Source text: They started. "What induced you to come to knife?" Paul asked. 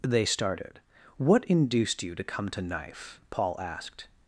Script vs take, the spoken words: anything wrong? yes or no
no